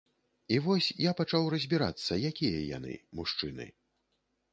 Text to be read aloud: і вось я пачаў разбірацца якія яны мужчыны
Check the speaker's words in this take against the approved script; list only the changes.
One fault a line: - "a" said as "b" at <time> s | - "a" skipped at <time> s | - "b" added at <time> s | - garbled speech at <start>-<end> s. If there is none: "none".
none